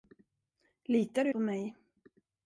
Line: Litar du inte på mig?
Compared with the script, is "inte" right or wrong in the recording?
wrong